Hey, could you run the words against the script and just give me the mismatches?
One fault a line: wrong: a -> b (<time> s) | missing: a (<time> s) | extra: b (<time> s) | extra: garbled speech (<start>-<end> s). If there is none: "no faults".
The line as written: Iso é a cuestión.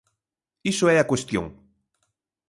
no faults